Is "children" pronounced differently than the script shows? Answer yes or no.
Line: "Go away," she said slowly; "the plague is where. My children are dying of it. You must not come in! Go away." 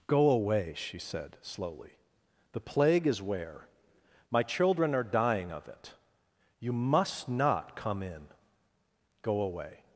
no